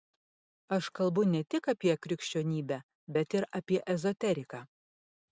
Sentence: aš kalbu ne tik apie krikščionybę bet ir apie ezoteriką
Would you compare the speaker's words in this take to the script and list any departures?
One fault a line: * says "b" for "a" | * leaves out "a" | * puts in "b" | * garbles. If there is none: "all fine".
all fine